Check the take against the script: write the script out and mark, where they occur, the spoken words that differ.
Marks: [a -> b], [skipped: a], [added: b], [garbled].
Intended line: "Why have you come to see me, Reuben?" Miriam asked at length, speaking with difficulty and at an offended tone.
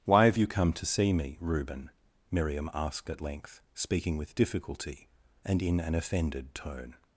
"Why have you come to see me, Reuben?" Miriam asked at length, speaking with difficulty and [at -> in] an offended tone.